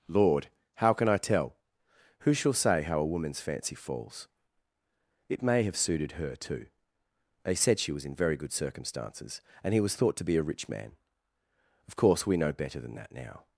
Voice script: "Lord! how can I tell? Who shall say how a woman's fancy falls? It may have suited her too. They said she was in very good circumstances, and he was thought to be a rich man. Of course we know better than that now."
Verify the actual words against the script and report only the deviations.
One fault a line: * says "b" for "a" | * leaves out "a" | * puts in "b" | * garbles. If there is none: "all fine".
all fine